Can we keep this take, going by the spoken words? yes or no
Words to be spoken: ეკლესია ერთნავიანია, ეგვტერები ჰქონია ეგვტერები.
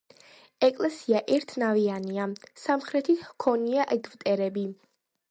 no